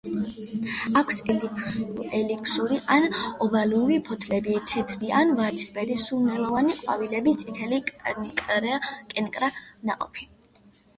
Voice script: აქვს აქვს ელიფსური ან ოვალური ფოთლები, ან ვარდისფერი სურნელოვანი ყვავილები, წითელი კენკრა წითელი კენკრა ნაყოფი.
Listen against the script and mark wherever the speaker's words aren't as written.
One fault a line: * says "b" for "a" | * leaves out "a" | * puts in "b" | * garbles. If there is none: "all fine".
* leaves out "აქვს"
* puts in "თეთრი"
* leaves out "წითელი კენკრა"